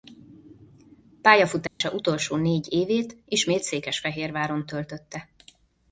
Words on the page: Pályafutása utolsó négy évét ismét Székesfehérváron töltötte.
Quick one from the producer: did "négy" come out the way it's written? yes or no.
yes